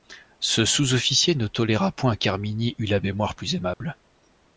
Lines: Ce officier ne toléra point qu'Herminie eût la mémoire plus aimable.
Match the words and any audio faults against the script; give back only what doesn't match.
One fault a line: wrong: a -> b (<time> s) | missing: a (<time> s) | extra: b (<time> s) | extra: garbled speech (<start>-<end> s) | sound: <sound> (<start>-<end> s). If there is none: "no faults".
extra: sous (0.7 s)
sound: dropout (3.7-3.8 s)